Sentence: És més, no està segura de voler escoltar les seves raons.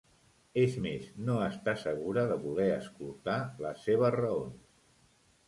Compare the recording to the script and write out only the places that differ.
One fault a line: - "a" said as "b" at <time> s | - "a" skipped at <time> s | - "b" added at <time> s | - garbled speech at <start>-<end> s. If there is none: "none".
none